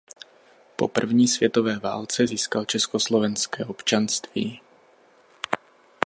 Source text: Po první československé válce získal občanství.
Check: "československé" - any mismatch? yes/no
yes